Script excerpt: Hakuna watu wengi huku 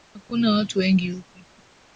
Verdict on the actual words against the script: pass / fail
pass